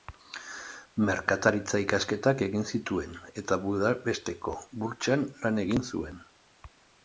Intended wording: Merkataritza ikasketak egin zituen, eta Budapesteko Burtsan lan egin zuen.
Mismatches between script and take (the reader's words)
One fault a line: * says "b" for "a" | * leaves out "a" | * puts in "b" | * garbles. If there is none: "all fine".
all fine